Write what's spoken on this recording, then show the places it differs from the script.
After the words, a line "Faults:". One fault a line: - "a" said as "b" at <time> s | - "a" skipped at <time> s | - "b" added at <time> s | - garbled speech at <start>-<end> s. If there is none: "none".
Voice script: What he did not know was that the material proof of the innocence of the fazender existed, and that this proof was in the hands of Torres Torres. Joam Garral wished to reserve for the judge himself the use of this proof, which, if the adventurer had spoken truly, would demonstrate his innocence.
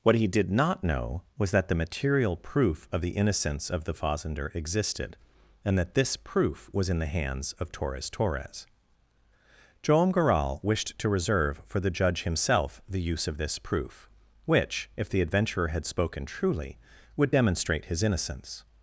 What he did not know was that the material proof of the innocence of the fazender existed, and that this proof was in the hands of Torres Torres. Joam Garral wished to reserve for the judge himself the use of this proof, which, if the adventurer had spoken truly, would demonstrate his innocence.
Faults:
none